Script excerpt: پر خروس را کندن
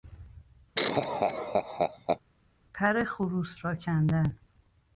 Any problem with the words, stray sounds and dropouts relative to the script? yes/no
yes